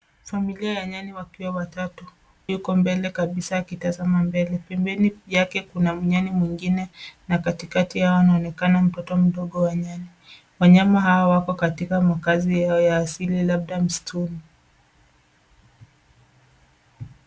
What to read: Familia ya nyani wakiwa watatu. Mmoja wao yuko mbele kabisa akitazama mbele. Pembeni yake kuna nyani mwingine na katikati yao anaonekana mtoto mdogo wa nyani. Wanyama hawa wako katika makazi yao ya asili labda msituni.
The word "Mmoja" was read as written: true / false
false